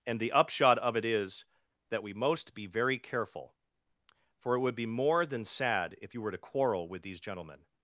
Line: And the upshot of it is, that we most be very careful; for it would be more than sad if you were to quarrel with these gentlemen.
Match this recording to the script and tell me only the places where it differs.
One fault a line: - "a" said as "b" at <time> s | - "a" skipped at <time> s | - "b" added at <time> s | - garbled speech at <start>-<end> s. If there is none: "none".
none